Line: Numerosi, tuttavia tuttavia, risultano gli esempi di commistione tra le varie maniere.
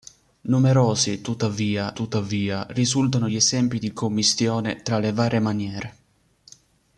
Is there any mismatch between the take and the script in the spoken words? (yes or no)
no